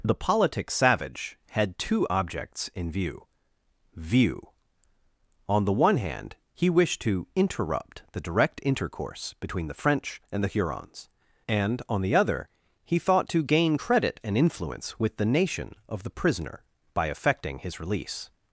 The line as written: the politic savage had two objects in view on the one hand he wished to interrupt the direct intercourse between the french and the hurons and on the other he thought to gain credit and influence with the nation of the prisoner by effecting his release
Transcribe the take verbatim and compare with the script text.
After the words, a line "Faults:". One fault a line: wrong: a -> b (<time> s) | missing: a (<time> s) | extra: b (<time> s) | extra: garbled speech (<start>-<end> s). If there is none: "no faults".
the politic savage had two objects in view view on the one hand he wished to interrupt the direct intercourse between the french and the hurons and on the other he thought to gain credit and influence with the nation of the prisoner by effecting his release
Faults:
extra: view (3.9 s)